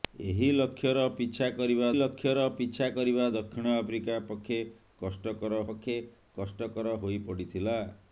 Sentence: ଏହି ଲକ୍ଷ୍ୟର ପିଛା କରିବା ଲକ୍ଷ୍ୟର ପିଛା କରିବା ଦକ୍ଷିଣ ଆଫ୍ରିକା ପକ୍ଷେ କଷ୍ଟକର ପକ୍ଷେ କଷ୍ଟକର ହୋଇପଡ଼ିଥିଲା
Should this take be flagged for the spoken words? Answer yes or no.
no